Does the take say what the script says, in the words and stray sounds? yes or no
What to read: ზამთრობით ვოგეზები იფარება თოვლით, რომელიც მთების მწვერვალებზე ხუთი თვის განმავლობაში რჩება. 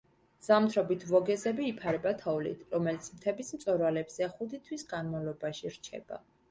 yes